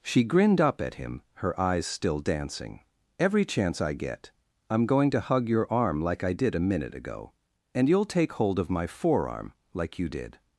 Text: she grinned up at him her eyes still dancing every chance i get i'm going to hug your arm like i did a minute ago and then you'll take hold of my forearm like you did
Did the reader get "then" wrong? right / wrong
wrong